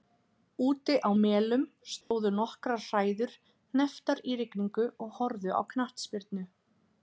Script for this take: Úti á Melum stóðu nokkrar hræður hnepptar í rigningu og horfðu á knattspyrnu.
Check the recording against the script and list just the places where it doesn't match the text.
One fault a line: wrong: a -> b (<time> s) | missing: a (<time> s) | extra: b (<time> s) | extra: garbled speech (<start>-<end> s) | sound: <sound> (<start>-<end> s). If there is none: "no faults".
sound: dropout (2.0-2.1 s)